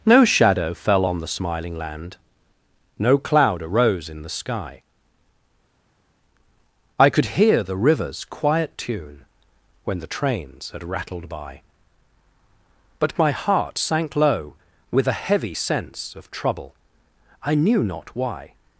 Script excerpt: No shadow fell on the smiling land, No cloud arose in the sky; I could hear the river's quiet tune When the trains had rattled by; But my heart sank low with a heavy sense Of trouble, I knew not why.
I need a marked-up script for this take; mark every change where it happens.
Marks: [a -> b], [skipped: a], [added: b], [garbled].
No shadow fell on the smiling land, No cloud arose in the sky; I could hear the river's quiet tune When the trains had rattled by; But my heart sank low with a heavy sense Of trouble, I knew not why.